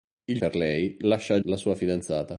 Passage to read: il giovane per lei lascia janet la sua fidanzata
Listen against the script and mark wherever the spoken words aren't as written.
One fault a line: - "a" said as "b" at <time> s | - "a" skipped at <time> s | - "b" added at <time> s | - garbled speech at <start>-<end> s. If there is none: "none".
- "giovane" skipped at 0.4 s
- "janet" skipped at 1.4 s